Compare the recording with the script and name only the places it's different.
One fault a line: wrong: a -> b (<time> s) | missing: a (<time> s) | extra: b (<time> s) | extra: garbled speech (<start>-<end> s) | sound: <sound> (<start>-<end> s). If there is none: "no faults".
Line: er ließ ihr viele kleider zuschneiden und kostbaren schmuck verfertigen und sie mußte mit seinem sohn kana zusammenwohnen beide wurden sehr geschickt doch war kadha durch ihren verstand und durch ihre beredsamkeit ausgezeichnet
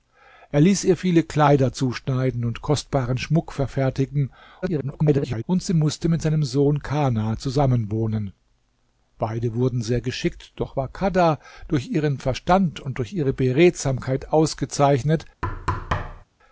extra: garbled speech (4.6-5.4 s)
sound: thud (15.4-16.2 s)